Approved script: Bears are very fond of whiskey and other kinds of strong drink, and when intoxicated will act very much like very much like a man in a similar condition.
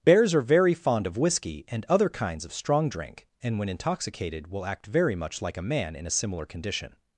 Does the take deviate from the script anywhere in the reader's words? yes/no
yes